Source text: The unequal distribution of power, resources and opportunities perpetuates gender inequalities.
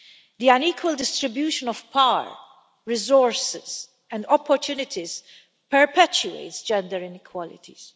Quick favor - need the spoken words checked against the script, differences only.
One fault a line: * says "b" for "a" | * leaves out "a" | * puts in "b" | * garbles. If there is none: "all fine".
all fine